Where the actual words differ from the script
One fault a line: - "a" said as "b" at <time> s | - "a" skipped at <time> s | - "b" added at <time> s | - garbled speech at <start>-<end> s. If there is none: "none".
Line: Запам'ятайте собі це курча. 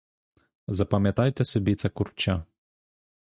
none